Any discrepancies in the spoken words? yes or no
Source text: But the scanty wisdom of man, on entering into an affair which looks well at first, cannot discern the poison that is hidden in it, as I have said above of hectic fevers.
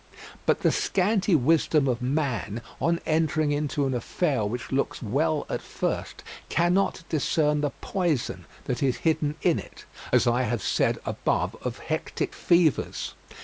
no